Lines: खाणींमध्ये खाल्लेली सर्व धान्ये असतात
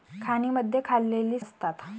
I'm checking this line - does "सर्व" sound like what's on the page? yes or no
no